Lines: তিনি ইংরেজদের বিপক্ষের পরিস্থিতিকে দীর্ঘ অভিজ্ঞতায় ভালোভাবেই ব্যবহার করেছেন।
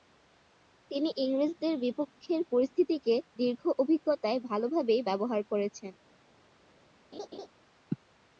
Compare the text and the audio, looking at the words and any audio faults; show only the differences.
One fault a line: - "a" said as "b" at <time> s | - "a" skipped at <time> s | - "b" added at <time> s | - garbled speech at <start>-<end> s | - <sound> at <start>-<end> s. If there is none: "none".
- laugh at 7.1-7.5 s